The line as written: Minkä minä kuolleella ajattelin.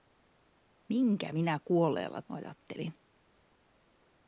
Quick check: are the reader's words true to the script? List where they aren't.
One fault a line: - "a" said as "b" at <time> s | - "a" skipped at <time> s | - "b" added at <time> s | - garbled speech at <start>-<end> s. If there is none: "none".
none